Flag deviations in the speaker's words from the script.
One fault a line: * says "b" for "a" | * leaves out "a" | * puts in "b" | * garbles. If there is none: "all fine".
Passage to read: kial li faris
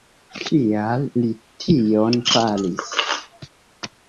* puts in "tion"